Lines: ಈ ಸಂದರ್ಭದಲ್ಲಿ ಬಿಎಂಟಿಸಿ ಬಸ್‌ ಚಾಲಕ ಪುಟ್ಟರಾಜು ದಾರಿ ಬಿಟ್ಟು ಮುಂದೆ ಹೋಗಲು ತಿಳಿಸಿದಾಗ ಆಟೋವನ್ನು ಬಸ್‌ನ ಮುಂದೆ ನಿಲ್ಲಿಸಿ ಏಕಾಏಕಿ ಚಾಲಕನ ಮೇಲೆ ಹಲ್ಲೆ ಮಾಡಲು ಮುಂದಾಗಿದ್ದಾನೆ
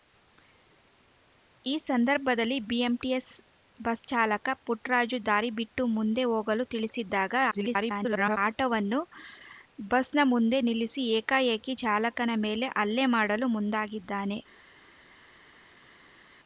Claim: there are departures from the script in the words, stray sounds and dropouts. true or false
true